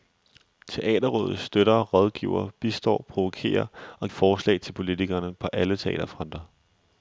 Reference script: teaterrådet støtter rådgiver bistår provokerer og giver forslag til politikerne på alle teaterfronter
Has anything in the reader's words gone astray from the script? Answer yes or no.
yes